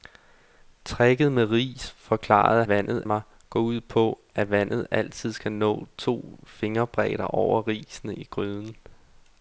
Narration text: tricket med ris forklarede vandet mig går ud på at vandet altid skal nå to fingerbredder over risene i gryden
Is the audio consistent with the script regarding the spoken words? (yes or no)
yes